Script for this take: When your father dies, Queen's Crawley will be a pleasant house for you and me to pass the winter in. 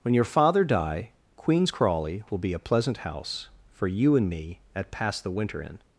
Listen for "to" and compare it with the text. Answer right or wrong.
wrong